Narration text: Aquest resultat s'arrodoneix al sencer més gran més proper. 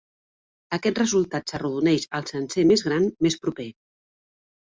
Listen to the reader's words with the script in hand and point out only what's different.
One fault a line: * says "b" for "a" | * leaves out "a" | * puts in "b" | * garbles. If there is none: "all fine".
all fine